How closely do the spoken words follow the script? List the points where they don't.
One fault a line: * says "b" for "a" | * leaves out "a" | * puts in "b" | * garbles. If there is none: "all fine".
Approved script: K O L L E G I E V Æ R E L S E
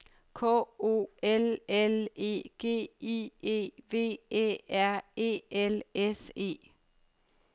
all fine